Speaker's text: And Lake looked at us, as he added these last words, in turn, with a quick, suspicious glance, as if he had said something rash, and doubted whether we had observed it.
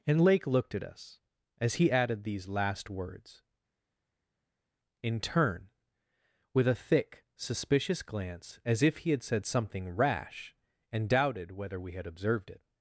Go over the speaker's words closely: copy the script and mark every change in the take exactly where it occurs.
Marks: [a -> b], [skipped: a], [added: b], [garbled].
And Lake looked at us, as he added these last words, in turn, with a [quick, -> thick] suspicious glance, as if he had said something rash, and doubted whether we had observed it.